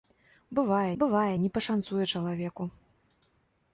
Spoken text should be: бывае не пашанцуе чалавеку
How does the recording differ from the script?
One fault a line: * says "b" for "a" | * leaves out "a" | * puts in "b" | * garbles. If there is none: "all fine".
* puts in "бывае"